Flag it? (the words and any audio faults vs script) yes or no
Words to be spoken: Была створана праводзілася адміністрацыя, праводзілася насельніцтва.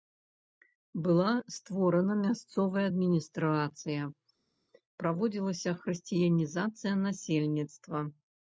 yes